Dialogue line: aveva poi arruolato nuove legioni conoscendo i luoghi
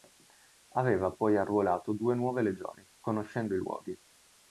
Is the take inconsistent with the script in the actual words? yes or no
yes